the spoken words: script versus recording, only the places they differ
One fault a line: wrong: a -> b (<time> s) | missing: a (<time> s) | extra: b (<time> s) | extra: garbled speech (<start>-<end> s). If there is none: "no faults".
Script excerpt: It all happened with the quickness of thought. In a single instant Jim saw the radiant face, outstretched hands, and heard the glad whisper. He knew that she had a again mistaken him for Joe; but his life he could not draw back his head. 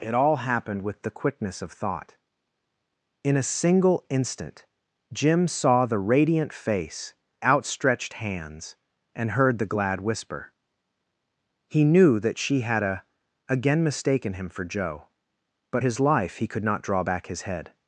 no faults